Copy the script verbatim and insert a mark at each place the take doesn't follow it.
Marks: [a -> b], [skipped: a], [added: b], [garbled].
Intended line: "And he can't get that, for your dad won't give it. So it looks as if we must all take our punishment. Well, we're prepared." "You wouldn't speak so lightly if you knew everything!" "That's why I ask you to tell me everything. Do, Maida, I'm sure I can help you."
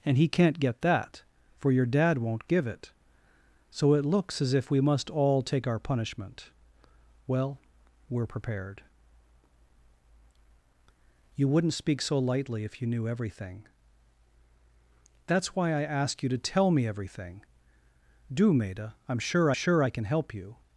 "And he can't get that, for your dad won't give it. So it looks as if we must all take our punishment. Well, we're prepared." "You wouldn't speak so lightly if you knew everything!" "That's why I ask you to tell me everything. Do, Maida, I'm sure [added: sure] I can help you."